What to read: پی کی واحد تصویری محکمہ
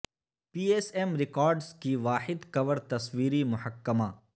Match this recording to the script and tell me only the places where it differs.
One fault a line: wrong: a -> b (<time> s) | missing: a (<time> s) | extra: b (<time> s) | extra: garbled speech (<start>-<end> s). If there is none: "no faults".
extra: ایس ایم ریکارڈز (0.7 s)
extra: کور (2.5 s)